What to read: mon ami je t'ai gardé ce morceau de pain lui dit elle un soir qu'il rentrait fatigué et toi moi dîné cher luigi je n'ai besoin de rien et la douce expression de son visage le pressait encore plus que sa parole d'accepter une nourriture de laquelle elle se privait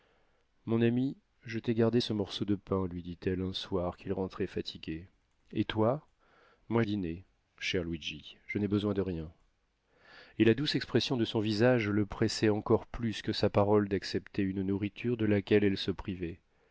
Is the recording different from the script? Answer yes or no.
no